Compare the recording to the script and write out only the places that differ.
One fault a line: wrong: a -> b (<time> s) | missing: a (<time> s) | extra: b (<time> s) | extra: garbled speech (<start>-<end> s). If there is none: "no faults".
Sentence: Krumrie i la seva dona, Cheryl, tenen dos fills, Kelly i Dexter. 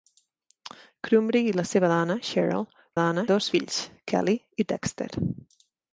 wrong: tenen -> dona (3.0 s)